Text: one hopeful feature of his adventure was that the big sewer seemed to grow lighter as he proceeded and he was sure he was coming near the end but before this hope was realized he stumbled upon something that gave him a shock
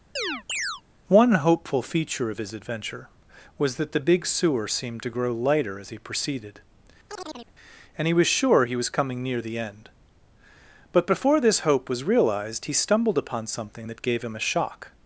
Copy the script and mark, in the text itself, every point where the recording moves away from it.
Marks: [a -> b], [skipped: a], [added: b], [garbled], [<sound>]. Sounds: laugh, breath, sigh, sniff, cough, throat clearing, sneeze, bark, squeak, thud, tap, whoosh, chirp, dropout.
[chirp] one hopeful feature of his adventure was that the big sewer seemed to grow lighter as he proceeded [chirp] and he was sure he was coming near the end but before this hope was realized he stumbled upon something that gave him a shock